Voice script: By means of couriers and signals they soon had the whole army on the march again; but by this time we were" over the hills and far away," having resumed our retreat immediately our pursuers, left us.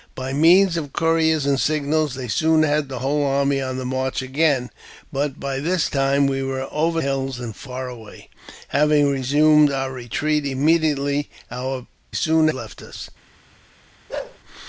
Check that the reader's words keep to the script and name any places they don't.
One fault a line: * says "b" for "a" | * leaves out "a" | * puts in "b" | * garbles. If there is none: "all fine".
* leaves out "the"
* says "soon" for "pursuers"